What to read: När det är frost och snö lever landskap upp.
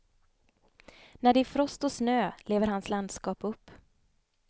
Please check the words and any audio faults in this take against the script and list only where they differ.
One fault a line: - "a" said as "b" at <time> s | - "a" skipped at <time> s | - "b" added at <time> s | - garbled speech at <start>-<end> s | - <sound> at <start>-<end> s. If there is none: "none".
- "hans" added at 2.7 s